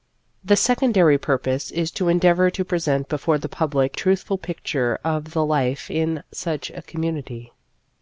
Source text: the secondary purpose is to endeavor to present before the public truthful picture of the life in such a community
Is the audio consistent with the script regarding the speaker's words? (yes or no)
yes